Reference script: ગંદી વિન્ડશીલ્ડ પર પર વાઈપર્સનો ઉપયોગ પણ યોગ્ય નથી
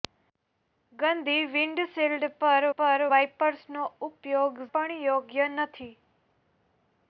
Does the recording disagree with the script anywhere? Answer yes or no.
no